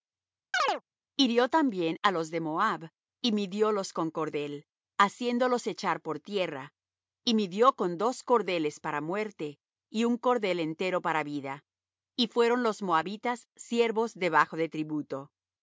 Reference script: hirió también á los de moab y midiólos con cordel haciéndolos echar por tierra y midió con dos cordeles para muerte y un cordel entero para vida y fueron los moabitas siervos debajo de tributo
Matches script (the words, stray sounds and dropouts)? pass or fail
fail